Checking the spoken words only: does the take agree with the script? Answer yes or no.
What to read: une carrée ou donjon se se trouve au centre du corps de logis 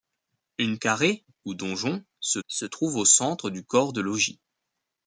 yes